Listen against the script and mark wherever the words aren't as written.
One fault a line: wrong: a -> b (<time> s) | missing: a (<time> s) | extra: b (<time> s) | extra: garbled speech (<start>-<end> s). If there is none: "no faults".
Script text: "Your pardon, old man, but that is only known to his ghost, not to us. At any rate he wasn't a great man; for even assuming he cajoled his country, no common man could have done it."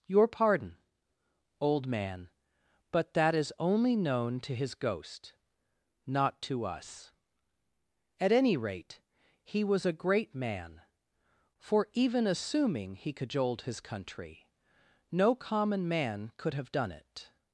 wrong: wasn't -> was (9.6 s)